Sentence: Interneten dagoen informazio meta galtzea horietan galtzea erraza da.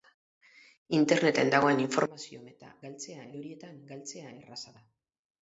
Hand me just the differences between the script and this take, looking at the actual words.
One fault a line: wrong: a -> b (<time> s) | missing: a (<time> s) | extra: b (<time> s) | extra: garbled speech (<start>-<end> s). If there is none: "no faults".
no faults